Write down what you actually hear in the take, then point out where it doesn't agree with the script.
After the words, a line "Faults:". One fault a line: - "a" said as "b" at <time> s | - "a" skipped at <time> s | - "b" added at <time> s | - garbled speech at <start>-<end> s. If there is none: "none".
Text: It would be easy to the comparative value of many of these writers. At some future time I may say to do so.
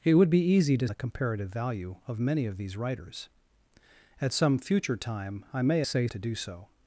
It would be easy to the comparative value of many of these writers. At some future time I may say to do so.
Faults:
none